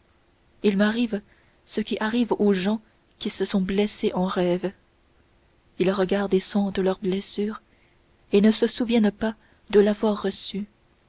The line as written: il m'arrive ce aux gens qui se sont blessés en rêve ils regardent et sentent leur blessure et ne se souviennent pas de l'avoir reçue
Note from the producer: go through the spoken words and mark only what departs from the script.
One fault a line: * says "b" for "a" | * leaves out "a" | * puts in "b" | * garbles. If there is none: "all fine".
* puts in "qui arrive"